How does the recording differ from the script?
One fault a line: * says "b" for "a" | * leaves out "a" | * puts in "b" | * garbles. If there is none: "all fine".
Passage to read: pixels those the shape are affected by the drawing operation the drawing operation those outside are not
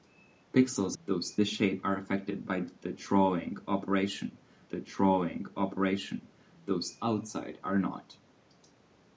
all fine